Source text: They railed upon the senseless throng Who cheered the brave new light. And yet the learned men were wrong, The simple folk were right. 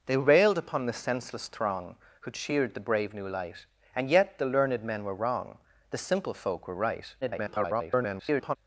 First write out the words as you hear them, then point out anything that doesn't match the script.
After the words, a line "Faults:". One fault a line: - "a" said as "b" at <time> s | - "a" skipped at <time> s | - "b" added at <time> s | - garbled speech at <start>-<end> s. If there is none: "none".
They railed upon the senseless throng Who cheered the brave new light. And yet the learned men were wrong, The simple folk were right. [garbled]
Faults:
- garbled speech at 7.2-8.6 s